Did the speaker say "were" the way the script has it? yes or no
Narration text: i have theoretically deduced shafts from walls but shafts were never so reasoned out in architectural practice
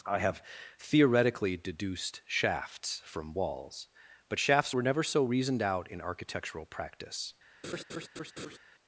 yes